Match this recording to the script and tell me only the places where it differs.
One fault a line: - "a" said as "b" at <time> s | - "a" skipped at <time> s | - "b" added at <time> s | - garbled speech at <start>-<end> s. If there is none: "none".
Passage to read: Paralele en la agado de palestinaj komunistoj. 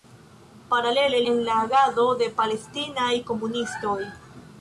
none